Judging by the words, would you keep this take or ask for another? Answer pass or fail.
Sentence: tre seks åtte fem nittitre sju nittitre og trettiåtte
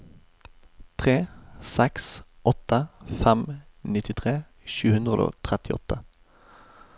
fail